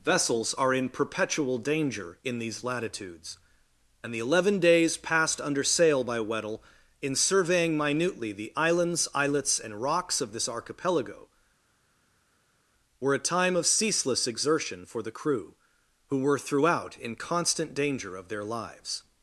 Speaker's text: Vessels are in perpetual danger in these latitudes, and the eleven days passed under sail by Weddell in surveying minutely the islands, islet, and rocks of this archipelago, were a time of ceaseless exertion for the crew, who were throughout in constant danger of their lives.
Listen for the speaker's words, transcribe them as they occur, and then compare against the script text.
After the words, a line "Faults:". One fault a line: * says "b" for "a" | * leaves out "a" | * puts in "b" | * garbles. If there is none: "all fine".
Vessels are in perpetual danger in these latitudes, and the eleven days passed under sail by Weddell in surveying minutely the islands, islets, and rocks of this archipelago, were a time of ceaseless exertion for the crew, who were throughout in constant danger of their lives.
Faults:
* says "islets" for "islet"